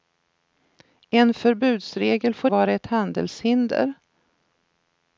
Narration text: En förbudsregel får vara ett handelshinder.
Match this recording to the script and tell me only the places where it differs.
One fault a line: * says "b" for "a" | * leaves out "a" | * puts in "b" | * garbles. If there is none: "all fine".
all fine